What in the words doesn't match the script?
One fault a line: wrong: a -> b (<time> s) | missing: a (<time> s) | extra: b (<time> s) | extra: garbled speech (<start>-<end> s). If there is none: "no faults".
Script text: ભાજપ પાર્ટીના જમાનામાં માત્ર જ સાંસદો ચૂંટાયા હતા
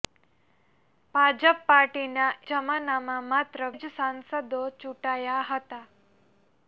no faults